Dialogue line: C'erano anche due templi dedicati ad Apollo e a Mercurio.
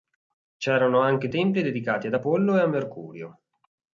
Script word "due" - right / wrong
wrong